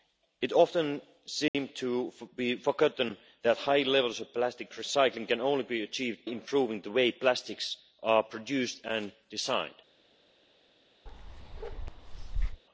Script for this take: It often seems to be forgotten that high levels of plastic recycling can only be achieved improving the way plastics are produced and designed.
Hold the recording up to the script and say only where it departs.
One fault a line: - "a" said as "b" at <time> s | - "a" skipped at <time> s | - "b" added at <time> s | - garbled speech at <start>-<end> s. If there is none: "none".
none